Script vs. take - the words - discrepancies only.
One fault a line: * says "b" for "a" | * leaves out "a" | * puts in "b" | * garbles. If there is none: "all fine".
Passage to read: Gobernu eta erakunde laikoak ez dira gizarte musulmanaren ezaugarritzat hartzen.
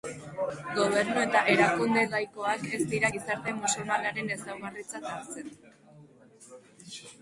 all fine